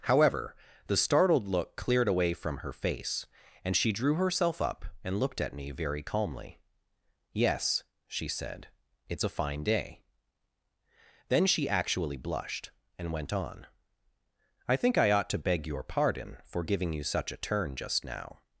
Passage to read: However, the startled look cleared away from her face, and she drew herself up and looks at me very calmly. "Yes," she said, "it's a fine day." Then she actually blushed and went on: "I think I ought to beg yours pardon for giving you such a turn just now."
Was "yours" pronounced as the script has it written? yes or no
no